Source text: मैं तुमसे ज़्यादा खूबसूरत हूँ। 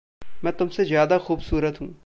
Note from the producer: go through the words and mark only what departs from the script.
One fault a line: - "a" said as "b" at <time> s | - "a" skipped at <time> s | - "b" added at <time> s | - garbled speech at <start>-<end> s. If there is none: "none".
none